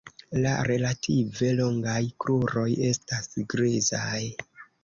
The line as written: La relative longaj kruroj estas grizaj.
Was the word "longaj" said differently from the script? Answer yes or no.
no